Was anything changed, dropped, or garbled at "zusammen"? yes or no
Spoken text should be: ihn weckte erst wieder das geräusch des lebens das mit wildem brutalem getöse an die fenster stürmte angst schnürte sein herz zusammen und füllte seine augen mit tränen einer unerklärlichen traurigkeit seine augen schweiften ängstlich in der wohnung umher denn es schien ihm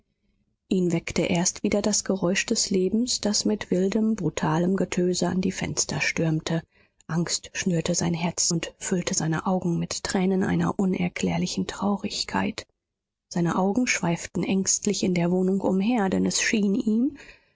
yes